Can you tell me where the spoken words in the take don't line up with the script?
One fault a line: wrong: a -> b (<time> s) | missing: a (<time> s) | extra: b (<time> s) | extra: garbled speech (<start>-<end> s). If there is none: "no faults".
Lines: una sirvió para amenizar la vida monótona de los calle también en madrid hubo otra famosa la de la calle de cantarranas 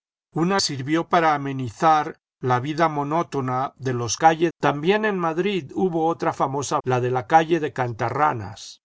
no faults